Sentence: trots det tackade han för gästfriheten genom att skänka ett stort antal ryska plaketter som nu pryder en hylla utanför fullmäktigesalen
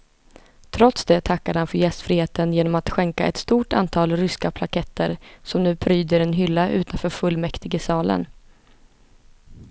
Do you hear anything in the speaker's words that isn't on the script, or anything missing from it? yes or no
no